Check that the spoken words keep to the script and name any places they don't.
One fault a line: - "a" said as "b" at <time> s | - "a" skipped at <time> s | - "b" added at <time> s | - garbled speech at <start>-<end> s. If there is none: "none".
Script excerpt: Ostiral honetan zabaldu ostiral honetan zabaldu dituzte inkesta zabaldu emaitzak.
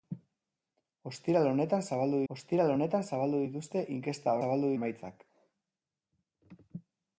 none